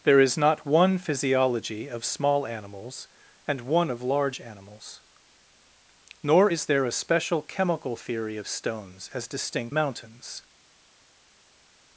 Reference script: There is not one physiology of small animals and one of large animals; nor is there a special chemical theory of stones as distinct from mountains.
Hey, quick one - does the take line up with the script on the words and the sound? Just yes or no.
no